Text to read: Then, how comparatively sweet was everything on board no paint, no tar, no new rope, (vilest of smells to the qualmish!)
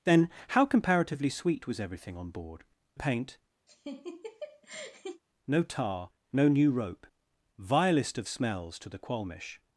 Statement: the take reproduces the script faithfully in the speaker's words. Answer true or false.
false